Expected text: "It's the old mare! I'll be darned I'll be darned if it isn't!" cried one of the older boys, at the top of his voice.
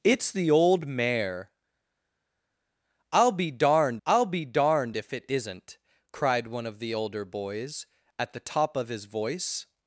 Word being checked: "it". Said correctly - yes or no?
yes